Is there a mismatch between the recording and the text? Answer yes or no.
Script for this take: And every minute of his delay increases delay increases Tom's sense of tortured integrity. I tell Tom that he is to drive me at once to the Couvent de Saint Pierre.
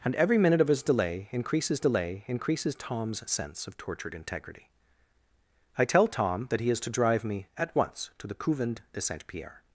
no